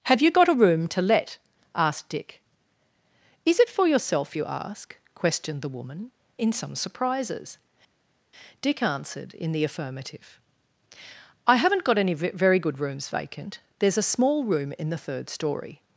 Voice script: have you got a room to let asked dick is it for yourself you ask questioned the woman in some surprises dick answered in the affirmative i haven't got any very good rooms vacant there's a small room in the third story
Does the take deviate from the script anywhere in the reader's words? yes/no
no